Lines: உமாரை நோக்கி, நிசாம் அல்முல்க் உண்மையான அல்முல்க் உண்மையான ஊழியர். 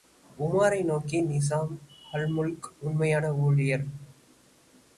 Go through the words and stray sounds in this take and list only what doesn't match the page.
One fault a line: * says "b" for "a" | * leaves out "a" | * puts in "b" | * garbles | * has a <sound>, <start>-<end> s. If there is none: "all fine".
* leaves out "அல்முல்க் உண்மையான"